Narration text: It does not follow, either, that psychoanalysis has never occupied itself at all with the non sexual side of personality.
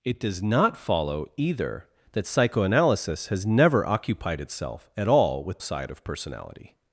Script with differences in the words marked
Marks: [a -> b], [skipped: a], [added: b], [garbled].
It does not follow, either, that psychoanalysis has never occupied itself at all with [skipped: the non sexual] side of personality.